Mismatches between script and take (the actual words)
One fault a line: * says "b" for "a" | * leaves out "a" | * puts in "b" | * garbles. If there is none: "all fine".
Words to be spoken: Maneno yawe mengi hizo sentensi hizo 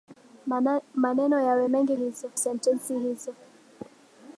all fine